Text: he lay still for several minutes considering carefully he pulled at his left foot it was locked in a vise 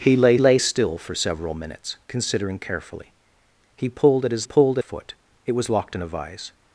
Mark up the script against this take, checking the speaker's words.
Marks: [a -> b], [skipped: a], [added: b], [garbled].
he lay [added: lay] still for several minutes considering carefully he pulled at his [left -> pulled] foot it was locked in a vise